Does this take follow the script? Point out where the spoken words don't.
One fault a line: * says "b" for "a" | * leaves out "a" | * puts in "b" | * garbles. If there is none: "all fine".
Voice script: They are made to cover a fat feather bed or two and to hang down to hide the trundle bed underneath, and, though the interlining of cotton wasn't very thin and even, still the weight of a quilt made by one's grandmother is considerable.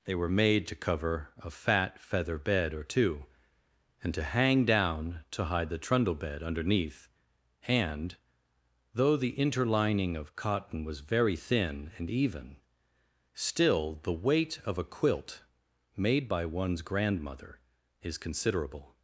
* says "were" for "are"
* says "was" for "wasn't"